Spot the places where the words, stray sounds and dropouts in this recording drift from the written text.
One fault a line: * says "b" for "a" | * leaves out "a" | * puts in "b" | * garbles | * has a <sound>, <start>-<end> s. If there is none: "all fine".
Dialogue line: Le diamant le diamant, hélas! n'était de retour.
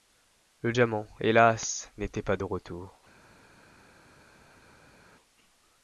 * leaves out "le diamant"
* puts in "pas"